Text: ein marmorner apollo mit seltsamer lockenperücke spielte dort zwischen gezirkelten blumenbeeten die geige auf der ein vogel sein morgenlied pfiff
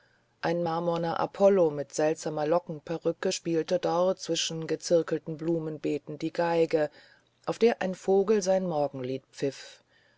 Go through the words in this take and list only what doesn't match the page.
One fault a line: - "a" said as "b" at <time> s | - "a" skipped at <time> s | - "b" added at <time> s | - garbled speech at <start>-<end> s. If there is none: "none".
none